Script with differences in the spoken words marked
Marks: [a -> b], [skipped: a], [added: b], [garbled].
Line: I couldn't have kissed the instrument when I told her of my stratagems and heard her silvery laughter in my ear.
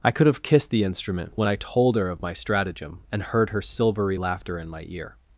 I [couldn't -> could] have kissed the instrument when I told her of my [stratagems -> stratagem] and heard her silvery laughter in my ear.